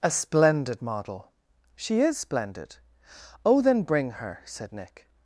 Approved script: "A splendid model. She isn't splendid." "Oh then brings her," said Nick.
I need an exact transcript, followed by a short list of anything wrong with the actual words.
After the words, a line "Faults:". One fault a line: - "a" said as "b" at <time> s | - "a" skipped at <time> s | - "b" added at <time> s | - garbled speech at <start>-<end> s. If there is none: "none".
"A splendid model. She is splendid." "Oh then bring her," said Nick.
Faults:
- "isn't" said as "is" at 2.0 s
- "brings" said as "bring" at 3.8 s